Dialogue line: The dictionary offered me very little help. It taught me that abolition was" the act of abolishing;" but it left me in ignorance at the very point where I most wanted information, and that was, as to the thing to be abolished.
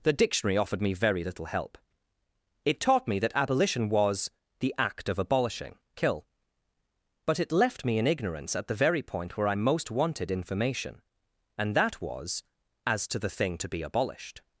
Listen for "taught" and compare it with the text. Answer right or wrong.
right